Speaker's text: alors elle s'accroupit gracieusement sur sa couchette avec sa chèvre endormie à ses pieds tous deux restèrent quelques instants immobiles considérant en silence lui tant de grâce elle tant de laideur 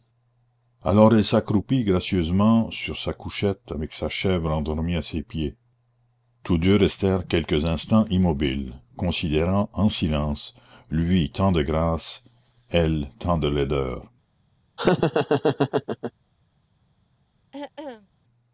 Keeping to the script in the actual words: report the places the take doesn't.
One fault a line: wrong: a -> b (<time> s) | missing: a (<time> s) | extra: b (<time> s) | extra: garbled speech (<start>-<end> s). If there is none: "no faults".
no faults